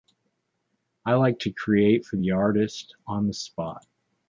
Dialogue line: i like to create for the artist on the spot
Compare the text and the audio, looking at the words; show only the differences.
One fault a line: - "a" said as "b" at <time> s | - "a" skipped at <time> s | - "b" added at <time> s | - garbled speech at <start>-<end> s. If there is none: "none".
none